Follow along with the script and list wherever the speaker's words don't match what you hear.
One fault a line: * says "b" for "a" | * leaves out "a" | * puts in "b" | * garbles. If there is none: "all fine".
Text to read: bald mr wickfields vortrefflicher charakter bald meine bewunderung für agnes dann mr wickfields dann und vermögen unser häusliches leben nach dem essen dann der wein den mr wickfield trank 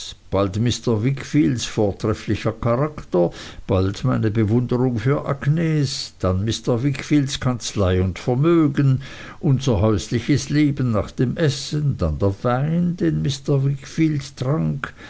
* says "kanzlei" for "dann"